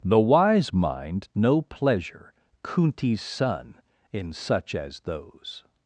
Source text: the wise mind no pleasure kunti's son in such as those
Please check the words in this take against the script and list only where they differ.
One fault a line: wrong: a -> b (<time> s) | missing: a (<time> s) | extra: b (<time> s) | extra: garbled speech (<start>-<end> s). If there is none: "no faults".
no faults